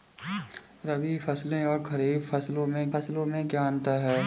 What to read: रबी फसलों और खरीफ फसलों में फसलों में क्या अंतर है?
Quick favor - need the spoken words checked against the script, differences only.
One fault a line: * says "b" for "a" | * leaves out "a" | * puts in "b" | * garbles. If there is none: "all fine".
all fine